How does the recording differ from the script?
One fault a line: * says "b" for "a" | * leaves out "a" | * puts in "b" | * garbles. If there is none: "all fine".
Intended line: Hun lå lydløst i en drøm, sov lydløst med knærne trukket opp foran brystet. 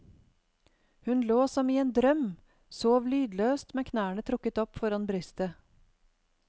* says "som" for "lydløst"